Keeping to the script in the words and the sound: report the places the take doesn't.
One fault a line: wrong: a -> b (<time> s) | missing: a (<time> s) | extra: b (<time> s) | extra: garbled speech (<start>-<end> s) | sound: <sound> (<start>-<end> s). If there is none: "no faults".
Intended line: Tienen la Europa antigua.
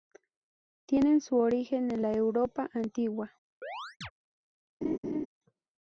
extra: su origen en (1.2 s)
sound: chirp (3.6-4.1 s)
sound: laugh (4.8-5.3 s)